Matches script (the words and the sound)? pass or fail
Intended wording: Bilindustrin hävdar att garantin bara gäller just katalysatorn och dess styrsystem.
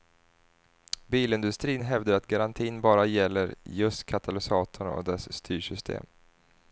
pass